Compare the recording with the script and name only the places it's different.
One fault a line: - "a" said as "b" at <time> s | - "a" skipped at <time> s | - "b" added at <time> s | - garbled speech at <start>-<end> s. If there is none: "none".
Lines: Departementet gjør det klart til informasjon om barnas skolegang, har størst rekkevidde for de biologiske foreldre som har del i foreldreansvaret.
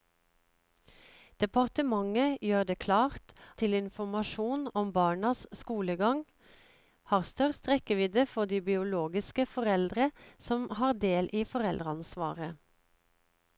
none